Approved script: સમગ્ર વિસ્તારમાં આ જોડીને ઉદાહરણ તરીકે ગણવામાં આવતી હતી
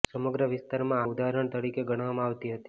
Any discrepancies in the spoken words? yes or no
yes